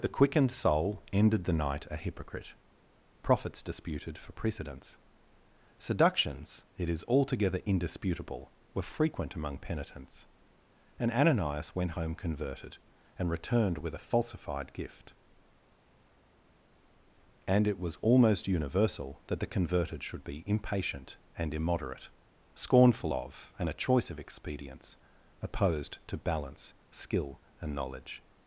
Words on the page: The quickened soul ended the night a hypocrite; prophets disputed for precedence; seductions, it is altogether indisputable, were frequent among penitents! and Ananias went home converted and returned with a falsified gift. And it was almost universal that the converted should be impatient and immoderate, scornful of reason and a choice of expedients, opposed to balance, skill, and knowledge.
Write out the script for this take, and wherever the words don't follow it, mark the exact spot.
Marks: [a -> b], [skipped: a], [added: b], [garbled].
The quickened soul ended the night a hypocrite; prophets disputed for precedence; seductions, it is altogether indisputable, were frequent among penitents! and Ananias went home converted and returned with a falsified gift. And it was almost universal that the converted should be impatient and immoderate, scornful of [skipped: reason] and a choice of expedients, opposed to balance, skill, and knowledge.